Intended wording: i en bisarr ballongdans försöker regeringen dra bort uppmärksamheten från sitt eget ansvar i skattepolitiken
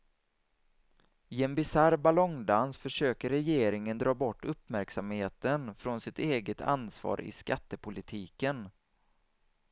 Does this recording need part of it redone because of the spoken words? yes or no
no